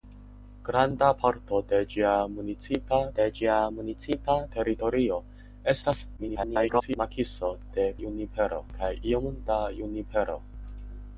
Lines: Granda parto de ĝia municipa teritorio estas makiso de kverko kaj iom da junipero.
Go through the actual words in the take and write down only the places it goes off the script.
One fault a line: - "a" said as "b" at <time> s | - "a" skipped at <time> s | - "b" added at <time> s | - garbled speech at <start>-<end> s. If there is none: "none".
- "de ĝia municipa" added at 3.2 s
- garbled speech at 6.2-7.0 s
- "kverko" said as "junipero" at 8.0 s